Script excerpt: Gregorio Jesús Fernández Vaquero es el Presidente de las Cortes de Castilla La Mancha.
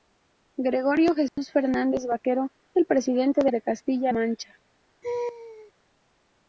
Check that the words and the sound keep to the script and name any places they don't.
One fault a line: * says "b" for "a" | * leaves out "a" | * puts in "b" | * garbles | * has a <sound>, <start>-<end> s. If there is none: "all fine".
* has a dropout, 1.3-1.4 s
* leaves out "es"
* leaves out "las Cortes"
* leaves out "La"
* has a laugh, 5.0-5.7 s